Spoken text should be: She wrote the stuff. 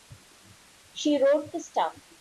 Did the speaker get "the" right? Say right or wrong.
right